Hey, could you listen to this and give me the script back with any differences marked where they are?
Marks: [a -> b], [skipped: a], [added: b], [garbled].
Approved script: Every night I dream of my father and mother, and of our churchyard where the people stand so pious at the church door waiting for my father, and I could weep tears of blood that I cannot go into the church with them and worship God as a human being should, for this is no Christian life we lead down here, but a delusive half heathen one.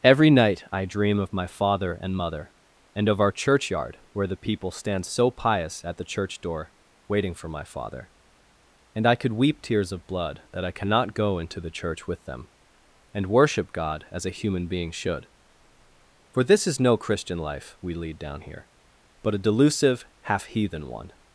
Every night I dream of my father and mother, and of our churchyard where the people stand so pious at the church door waiting for my father, and I could weep tears of blood that I cannot go into the church with them and worship God as a human being should, for this is no Christian life we lead down here, but a delusive half heathen one.